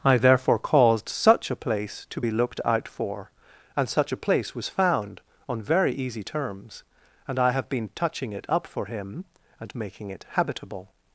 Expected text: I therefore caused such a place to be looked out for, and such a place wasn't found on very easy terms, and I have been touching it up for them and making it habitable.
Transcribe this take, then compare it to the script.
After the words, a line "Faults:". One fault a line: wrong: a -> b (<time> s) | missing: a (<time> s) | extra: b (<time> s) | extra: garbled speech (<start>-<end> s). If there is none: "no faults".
I therefore caused such a place to be looked out for, and such a place was found on very easy terms, and I have been touching it up for him and making it habitable.
Faults:
wrong: wasn't -> was (4.5 s)
wrong: them -> him (8.9 s)